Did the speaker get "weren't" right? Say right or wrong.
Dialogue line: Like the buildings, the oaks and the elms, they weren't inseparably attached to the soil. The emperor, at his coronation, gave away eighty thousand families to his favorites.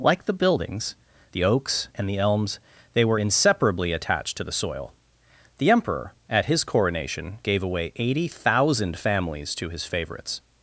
wrong